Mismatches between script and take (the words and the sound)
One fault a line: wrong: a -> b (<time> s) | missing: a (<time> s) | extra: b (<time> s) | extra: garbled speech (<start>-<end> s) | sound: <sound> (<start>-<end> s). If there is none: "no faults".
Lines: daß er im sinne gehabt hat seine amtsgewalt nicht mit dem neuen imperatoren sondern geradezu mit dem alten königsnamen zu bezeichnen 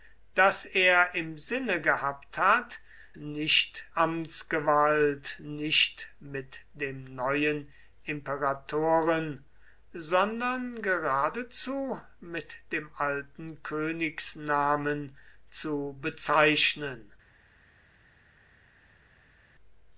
wrong: seine -> nicht (3.1 s)